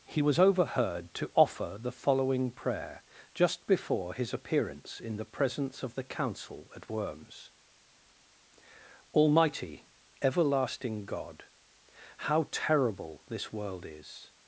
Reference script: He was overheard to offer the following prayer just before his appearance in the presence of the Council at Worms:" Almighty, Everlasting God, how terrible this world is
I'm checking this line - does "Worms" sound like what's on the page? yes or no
yes